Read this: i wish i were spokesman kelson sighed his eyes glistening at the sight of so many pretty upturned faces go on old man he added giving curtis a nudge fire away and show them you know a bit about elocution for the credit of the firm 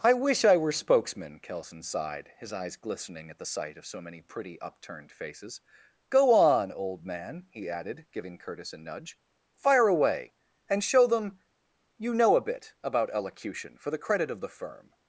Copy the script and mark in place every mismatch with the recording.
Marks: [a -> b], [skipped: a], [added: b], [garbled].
i wish i were spokesman kelson sighed his eyes glistening at the sight of so many pretty upturned faces go on old man he added giving curtis a nudge fire away and show them you know a bit about elocution for the credit of the firm